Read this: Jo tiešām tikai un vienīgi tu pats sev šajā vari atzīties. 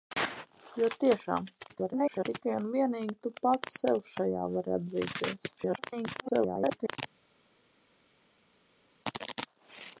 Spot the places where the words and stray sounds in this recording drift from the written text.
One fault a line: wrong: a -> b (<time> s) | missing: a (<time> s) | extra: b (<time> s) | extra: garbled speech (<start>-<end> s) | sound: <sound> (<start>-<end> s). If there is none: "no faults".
extra: garbled speech (1.7-2.2 s)
extra: garbled speech (5.6-7.0 s)